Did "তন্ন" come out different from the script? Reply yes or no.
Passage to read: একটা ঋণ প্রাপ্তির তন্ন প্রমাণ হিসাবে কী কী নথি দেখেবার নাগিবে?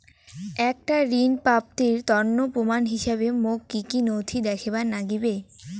no